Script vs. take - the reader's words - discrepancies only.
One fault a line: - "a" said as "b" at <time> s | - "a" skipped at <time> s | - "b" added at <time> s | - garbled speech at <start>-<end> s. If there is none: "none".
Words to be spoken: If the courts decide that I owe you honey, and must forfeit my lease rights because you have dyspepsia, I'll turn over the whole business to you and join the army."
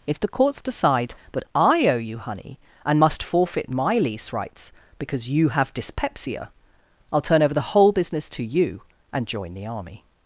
none